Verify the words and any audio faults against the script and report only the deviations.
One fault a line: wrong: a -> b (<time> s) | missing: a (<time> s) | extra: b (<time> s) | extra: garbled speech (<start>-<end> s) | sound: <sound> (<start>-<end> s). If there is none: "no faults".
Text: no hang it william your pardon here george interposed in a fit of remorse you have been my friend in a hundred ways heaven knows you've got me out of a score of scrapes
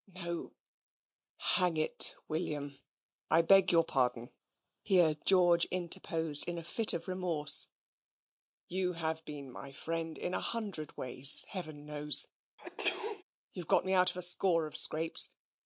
extra: i beg (3.3 s)
sound: sneeze (12.6-13.2 s)